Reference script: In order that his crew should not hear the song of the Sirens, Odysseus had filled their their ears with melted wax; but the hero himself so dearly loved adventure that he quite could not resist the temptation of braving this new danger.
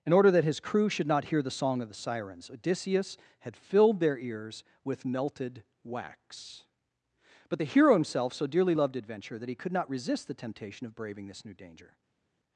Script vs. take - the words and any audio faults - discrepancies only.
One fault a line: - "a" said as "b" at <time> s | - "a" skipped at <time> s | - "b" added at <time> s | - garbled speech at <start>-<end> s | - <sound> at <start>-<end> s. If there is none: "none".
- "their" skipped at 4.2 s
- "quite" skipped at 9.5 s